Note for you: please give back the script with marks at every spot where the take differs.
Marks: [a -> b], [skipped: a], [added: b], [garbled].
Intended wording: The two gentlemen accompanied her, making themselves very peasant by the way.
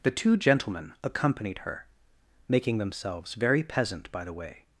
The two gentlemen accompanied her, making themselves very peasant by the way.